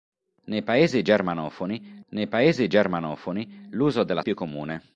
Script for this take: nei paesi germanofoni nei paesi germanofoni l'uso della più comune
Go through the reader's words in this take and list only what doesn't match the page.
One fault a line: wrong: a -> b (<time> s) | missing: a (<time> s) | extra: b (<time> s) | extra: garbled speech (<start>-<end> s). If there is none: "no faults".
no faults